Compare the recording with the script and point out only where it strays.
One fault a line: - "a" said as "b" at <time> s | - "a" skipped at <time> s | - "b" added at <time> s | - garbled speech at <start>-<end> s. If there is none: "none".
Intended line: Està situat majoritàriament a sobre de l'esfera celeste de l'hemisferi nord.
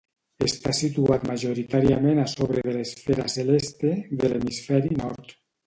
none